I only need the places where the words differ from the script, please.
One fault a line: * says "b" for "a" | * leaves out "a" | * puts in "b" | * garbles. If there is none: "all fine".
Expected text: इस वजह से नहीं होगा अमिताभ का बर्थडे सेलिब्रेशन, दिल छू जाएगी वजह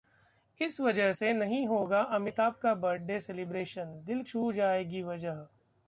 all fine